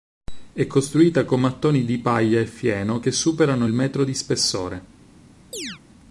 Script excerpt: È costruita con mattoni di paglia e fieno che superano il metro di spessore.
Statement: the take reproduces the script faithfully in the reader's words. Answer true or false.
true